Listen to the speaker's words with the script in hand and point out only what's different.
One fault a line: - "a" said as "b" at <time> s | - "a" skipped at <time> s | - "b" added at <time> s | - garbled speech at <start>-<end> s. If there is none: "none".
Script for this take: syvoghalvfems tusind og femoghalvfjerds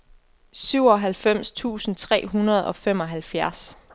- "tre hundrede" added at 2.0 s